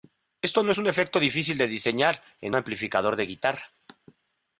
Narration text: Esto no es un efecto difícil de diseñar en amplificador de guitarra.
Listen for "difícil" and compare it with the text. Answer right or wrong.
right